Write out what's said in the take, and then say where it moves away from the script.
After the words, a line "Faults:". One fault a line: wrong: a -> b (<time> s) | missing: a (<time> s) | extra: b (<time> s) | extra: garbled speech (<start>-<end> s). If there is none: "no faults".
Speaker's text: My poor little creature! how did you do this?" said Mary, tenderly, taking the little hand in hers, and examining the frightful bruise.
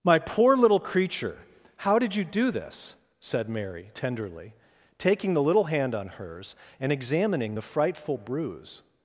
My poor little creature! how did you do this?" said Mary, tenderly, taking the little hand on hers, and examining the frightful bruise.
Faults:
wrong: in -> on (5.9 s)